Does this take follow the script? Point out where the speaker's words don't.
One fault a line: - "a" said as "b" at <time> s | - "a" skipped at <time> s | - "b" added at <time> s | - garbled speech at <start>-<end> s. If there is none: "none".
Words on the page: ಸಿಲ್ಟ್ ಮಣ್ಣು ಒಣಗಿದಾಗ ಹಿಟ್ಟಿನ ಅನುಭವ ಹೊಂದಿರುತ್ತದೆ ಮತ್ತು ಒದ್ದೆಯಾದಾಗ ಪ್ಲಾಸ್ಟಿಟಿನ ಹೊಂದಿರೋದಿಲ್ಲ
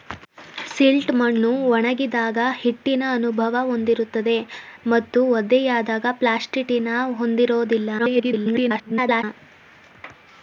- garbled speech at 8.0-9.2 s